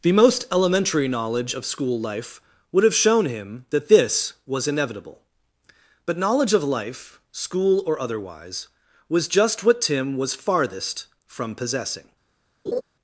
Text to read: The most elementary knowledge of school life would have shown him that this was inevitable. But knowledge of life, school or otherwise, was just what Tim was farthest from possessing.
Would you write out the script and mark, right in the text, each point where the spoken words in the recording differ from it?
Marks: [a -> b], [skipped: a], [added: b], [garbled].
The most elementary knowledge of school life would have shown him that this was inevitable. But knowledge of life, school or otherwise, was just what Tim was farthest from possessing.